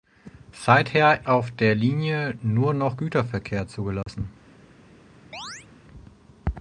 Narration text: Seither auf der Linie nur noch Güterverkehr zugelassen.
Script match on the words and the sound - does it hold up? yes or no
no